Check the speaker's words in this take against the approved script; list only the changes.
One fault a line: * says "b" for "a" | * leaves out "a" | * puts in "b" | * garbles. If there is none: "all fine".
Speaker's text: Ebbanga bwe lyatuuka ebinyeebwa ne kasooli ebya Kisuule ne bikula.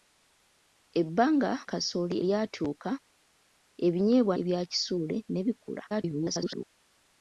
* says "kasooli" for "bwe"
* leaves out "ne kasooli"
* garbles